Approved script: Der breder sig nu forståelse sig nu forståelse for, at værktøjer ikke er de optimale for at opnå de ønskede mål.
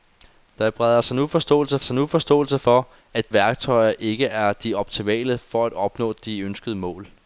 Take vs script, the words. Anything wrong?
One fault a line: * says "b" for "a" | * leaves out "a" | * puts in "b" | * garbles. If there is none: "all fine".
all fine